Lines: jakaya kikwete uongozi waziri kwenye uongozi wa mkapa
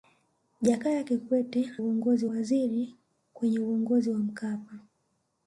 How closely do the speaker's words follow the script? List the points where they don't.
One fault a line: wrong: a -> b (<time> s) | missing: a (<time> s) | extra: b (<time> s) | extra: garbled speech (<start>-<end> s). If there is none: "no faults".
no faults